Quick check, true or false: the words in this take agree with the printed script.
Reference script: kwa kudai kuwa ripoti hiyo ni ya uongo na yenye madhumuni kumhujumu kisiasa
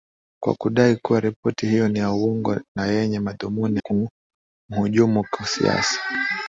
true